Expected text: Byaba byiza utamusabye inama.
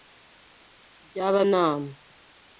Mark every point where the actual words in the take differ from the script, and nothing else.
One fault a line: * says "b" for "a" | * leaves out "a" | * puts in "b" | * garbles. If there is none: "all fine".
* leaves out "byiza utamusabye"